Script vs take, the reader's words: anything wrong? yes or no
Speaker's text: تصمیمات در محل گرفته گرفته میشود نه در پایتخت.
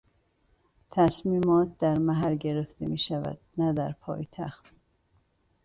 yes